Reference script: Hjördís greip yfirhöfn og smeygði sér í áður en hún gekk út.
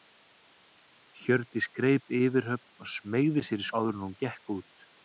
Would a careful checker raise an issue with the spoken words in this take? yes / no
no